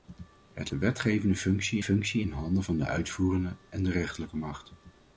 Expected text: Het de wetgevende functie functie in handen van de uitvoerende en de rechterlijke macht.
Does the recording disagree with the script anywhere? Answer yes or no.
no